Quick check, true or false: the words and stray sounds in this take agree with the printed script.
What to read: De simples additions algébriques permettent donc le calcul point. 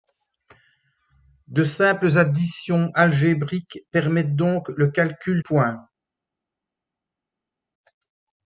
true